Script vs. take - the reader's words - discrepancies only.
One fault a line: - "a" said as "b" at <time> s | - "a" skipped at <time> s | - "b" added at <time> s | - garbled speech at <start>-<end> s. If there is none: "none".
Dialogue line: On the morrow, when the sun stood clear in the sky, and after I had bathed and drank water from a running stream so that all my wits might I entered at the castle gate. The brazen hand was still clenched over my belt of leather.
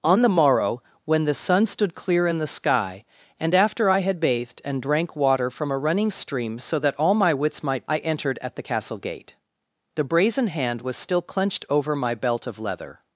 none